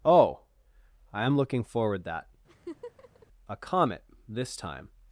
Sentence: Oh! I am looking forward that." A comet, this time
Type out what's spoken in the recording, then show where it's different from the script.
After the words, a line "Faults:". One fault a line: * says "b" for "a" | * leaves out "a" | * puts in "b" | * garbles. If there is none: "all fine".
Oh! I am looking forward that." A comet, this time
Faults:
all fine